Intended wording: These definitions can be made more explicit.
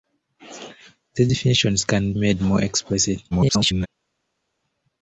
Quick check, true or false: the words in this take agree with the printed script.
false